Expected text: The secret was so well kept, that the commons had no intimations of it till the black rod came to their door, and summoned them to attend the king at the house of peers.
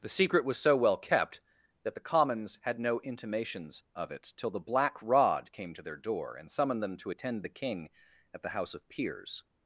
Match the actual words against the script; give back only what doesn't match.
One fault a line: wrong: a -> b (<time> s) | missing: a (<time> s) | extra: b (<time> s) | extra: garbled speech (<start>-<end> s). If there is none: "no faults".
no faults